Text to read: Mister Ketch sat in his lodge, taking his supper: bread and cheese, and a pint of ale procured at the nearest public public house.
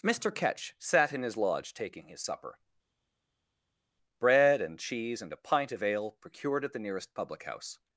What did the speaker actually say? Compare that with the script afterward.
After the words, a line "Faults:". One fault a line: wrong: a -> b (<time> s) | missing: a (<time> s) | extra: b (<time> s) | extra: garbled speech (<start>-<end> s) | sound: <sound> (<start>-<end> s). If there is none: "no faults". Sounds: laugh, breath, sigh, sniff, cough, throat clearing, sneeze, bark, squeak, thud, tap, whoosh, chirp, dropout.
Mister Ketch sat in his lodge, taking his supper: bread and cheese, and a pint of ale procured at the nearest public house.
Faults:
missing: public (7.5 s)